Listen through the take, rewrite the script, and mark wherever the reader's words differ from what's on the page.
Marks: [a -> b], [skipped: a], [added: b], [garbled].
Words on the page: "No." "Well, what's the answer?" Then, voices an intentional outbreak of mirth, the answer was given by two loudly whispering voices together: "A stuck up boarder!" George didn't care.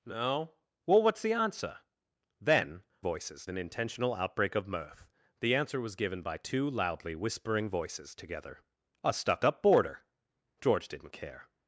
"No." "Well, what's the answer?" Then, voices an intentional outbreak of mirth, the answer was given by two loudly whispering voices together: "A stuck up boarder!" George didn't care.